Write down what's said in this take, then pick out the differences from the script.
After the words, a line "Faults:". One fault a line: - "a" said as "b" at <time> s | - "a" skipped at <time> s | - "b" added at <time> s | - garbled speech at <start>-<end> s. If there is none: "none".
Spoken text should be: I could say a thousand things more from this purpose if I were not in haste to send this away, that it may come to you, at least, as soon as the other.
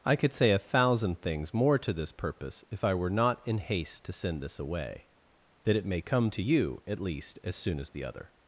I could say a thousand things more to this purpose if I were not in haste to send this away, that it may come to you, at least, as soon as the other.
Faults:
- "from" said as "to" at 1.8 s